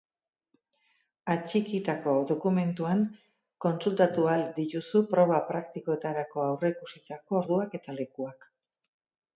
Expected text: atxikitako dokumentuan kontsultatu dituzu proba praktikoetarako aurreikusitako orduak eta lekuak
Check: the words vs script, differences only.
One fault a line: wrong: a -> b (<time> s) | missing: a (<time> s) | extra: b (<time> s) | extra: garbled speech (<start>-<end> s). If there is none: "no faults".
extra: ahal (4.3 s)